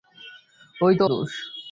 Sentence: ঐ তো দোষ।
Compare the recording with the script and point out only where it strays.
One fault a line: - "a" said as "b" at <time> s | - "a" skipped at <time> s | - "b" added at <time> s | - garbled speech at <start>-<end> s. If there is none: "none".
none